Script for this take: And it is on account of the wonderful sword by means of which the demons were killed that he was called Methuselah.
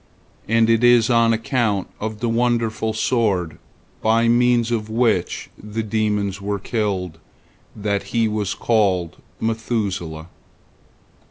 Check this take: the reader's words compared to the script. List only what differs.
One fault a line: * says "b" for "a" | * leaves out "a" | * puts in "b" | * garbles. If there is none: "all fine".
all fine